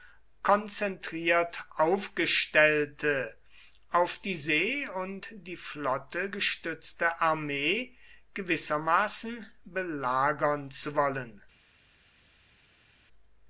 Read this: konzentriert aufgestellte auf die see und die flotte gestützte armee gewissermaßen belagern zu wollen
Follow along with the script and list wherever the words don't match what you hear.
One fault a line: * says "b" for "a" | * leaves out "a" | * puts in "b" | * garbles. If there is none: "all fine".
all fine